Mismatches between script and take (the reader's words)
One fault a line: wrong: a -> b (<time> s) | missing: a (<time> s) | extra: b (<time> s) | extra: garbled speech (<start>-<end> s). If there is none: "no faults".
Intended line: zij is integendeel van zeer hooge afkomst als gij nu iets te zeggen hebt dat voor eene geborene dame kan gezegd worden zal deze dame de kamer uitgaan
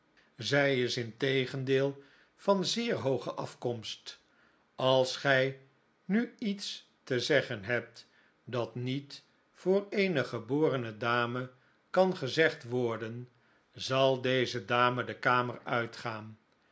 extra: niet (8.8 s)